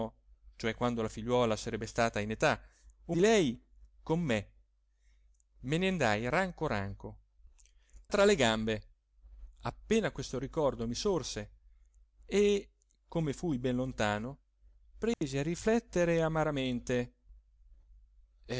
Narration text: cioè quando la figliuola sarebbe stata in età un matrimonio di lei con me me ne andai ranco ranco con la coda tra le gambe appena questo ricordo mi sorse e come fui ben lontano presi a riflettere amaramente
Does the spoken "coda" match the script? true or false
false